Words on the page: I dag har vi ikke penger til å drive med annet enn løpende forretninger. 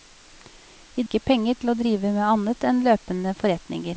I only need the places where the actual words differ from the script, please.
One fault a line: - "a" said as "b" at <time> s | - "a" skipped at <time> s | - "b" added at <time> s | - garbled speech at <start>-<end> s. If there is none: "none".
- "dag har vi" skipped at 1.0 s